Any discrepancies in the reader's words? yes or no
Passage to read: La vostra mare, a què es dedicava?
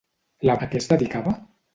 yes